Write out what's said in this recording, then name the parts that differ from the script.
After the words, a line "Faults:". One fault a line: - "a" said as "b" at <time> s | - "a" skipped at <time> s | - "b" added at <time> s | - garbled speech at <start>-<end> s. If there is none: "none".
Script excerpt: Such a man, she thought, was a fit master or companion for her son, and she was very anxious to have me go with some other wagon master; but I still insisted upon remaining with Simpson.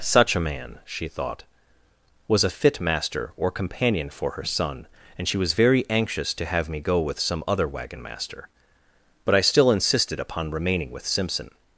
Such a man, she thought, was a fit master or companion for her son, and she was very anxious to have me go with some other wagon master; but I still insisted upon remaining with Simpson.
Faults:
none